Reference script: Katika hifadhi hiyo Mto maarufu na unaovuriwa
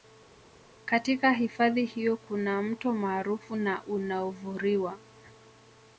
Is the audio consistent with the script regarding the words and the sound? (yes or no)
no